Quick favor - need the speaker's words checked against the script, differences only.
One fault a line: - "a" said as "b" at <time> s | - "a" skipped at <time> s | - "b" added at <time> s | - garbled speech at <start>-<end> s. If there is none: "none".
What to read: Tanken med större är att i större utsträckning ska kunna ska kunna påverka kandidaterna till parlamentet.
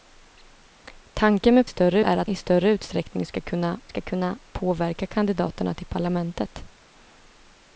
none